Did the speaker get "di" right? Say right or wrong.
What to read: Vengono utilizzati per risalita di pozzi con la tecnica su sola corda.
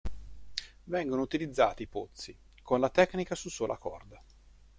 wrong